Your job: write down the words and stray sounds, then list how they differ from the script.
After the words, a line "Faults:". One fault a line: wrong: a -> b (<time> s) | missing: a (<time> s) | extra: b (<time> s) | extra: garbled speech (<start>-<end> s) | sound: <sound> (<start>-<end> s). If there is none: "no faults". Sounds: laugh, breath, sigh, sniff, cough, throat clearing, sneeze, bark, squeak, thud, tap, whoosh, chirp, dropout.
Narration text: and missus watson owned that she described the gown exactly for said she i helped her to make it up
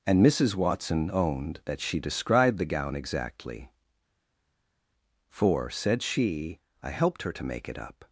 and missus watson owned that she described the gown exactly for said she i helped her to make it up
Faults:
no faults